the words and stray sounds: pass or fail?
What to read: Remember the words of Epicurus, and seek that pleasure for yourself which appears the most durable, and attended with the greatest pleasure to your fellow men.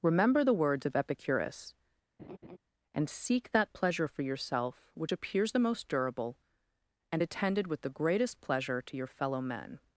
fail